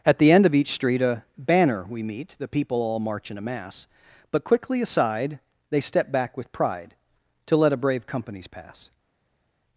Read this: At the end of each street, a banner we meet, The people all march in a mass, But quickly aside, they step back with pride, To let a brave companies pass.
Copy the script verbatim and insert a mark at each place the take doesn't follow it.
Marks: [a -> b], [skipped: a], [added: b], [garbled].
At the end of each street, a banner we meet, The people all march in a mass, But quickly aside, they step back with pride, To let a brave companies pass.